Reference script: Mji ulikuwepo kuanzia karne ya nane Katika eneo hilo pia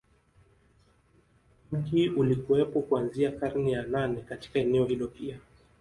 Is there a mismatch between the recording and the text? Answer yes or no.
no